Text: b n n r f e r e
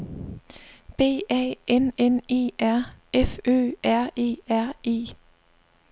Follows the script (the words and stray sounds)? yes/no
no